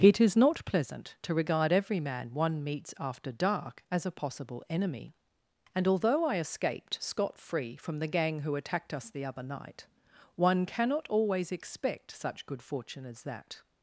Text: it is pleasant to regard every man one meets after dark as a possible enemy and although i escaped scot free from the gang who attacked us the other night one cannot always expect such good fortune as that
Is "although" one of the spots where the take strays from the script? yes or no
no